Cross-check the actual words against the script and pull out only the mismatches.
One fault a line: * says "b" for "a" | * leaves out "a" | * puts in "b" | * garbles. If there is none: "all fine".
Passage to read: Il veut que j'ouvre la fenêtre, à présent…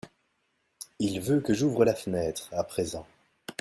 all fine